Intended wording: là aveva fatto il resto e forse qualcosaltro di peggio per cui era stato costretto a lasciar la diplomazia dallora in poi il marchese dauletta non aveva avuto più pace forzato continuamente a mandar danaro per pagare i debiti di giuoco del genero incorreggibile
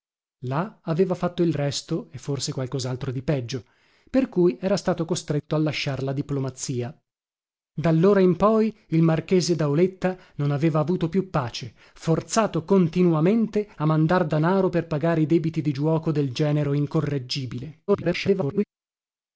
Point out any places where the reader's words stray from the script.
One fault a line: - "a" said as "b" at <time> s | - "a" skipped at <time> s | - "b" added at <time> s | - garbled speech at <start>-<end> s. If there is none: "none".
- garbled speech at 17.9-18.6 s